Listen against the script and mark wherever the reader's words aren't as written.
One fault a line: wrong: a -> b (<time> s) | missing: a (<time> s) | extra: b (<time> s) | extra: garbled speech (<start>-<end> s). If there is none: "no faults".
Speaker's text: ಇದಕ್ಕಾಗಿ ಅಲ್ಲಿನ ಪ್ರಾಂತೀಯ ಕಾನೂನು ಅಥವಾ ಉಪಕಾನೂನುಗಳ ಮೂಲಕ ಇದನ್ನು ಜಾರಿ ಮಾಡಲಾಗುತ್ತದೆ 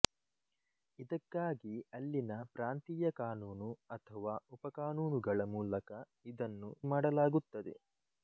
missing: ಜಾರಿ (6.7 s)